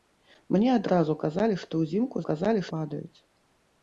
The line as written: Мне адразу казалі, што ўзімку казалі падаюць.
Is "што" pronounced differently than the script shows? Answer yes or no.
no